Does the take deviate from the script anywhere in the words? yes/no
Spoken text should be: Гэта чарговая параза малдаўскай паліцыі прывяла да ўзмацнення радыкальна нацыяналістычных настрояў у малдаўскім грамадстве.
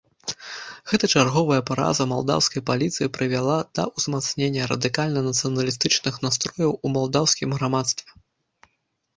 no